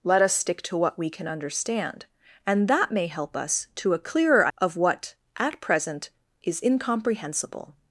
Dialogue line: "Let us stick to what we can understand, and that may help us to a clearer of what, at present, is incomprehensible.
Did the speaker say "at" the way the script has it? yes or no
yes